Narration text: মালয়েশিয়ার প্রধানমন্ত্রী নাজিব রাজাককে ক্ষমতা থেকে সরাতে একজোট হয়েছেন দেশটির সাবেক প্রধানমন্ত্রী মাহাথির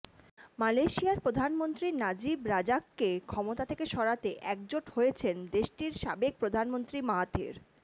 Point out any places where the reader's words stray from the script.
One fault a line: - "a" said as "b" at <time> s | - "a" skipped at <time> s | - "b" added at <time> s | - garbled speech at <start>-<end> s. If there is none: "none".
none